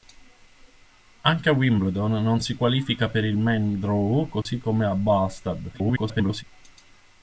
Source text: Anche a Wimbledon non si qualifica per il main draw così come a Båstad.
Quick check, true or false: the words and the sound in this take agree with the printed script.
false